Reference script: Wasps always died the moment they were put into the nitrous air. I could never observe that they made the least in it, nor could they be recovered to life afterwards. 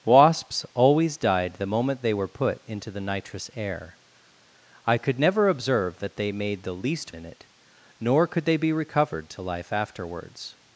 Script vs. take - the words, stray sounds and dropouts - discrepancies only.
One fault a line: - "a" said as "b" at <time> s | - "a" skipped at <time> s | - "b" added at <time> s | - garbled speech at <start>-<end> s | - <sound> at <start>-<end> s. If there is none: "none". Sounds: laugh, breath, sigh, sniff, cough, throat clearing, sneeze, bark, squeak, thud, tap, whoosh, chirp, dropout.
none